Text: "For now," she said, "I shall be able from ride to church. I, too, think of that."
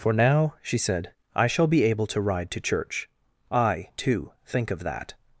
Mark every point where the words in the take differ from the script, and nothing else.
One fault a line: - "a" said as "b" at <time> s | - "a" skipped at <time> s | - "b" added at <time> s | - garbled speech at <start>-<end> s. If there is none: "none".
- "from" said as "to" at 2.1 s